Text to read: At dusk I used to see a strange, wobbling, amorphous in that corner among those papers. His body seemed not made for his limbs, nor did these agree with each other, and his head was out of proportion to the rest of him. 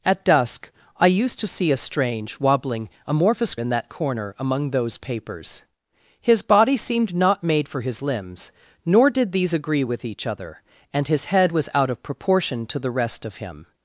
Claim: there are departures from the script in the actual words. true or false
false